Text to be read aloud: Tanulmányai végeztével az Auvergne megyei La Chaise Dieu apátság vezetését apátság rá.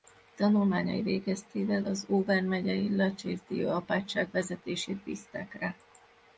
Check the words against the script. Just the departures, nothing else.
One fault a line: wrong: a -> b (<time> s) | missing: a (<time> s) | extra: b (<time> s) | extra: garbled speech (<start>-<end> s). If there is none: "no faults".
wrong: apátság -> bízták (5.0 s)